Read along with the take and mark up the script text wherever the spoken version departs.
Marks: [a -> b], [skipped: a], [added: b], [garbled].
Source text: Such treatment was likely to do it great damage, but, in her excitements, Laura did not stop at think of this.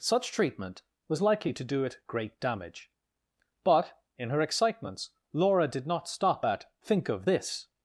Such treatment was likely to do it great damage, but, in her excitements, Laura did not stop at think of this.